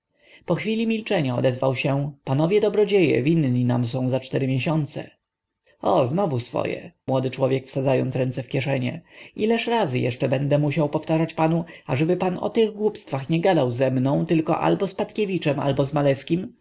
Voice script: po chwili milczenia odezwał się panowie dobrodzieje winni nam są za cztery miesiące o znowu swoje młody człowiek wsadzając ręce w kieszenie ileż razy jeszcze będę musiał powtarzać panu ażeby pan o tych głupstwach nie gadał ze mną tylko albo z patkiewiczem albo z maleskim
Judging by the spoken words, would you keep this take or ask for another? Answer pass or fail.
pass